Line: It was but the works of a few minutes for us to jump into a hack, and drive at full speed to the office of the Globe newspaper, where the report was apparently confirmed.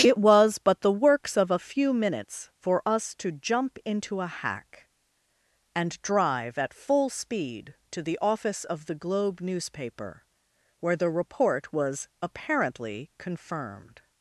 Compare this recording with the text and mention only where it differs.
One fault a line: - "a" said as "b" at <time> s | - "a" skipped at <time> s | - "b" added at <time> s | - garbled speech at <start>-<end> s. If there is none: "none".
none